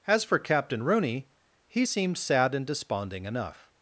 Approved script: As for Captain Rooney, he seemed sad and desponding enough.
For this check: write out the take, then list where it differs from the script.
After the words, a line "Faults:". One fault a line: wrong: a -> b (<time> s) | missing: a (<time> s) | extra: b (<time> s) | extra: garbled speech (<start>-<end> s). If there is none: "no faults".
As for Captain Rooney, he seemed sad and desponding enough.
Faults:
no faults